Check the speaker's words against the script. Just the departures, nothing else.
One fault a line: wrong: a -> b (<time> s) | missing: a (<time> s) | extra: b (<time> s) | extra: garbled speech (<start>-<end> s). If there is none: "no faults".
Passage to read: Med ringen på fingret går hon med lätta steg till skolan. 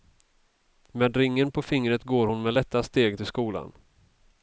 no faults